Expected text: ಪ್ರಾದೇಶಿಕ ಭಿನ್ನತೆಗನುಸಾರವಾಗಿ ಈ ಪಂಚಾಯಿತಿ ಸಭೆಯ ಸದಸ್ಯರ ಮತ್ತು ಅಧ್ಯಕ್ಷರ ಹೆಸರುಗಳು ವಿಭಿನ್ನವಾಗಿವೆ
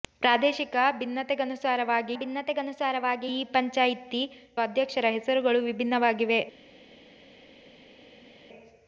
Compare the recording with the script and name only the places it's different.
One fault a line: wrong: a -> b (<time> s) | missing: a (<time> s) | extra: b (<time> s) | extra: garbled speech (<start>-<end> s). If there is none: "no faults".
extra: ಭಿನ್ನತೆಗನುಸಾರವಾಗಿ (2.2 s)
missing: ಸಭೆಯ ಸದಸ್ಯರ ಮತ್ತು (4.2 s)